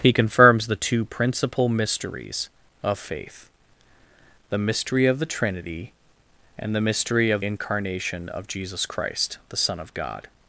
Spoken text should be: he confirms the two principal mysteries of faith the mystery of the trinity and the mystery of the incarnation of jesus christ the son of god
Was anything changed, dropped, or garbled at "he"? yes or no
no